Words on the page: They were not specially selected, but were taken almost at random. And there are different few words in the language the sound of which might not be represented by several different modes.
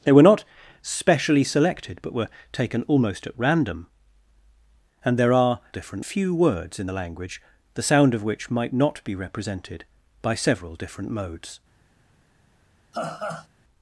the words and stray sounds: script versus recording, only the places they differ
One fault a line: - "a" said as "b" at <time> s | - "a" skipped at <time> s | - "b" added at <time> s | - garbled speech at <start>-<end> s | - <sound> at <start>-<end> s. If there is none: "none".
- laugh at 12.9-13.5 s